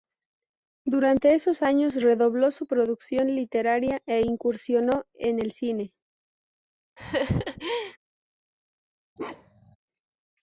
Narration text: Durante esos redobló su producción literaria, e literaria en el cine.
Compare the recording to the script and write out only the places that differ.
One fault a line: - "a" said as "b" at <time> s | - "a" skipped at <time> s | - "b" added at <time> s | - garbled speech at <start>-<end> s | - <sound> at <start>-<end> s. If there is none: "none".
- "años" added at 1.6 s
- "literaria" said as "incursionó" at 4.2 s
- laugh at 7.0-8.0 s
- bark at 9.2-9.8 s